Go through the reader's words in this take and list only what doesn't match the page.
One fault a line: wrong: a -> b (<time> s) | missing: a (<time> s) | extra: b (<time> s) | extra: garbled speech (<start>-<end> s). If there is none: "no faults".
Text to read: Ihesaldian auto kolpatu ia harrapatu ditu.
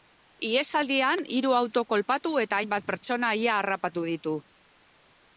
extra: hiru (1.4 s)
extra: eta hainbat pertsona (2.4 s)